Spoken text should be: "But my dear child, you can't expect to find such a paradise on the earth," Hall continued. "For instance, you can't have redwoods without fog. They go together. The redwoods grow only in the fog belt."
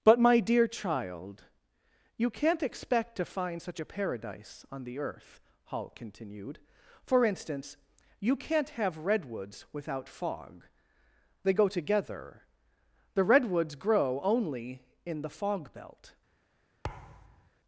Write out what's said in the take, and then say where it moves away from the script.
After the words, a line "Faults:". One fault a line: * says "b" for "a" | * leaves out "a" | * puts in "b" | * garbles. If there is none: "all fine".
"But my dear child, you can't expect to find such a paradise on the earth," Hall continued. "For instance, you can't have redwoods without fog. They go together. The redwoods grow only in the fog belt."
Faults:
all fine